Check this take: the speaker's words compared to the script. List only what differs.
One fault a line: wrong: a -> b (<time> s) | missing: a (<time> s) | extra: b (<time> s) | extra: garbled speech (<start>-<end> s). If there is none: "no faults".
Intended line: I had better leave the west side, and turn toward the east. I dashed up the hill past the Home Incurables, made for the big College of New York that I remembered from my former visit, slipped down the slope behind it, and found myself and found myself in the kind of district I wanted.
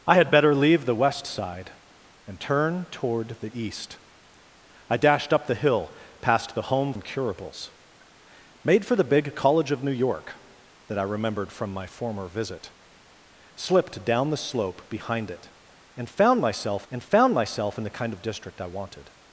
no faults